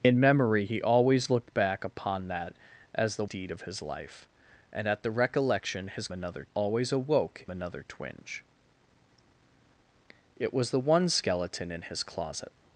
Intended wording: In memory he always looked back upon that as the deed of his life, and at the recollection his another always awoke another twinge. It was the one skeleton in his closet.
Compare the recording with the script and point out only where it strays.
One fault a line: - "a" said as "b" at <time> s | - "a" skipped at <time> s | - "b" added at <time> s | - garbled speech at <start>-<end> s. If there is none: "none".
none